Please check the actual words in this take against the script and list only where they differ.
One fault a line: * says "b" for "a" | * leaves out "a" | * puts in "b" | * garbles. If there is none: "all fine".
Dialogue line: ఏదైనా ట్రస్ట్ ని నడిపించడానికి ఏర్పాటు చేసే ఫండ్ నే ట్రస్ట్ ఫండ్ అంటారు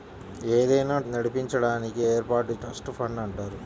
* leaves out "ట్రస్ట్ ని"
* leaves out "చేసే ఫండ్ నే"